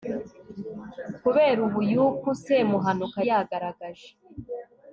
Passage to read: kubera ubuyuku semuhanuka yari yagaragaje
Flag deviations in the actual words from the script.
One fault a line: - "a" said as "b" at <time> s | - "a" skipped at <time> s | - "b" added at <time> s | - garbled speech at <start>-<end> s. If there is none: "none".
- "yari" skipped at 3.2 s